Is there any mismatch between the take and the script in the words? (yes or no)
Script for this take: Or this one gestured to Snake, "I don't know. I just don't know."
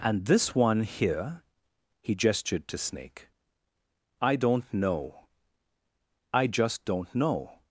yes